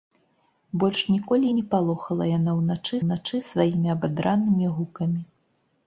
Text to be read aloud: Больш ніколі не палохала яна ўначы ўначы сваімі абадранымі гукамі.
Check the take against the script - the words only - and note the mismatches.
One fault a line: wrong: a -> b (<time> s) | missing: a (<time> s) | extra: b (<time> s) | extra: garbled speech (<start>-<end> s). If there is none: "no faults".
no faults